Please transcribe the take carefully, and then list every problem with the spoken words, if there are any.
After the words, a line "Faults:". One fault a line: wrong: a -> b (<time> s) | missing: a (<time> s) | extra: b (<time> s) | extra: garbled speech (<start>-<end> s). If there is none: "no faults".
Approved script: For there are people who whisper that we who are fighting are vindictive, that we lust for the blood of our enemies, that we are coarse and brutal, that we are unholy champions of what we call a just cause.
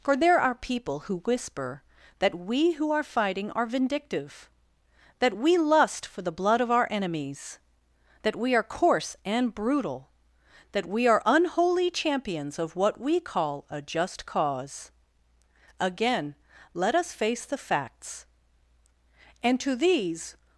For there are people who whisper that we who are fighting are vindictive, that we lust for the blood of our enemies, that we are coarse and brutal, that we are unholy champions of what we call a just cause. Again let us face the facts. And to these
Faults:
extra: Again let us face the facts And to these (15.8 s)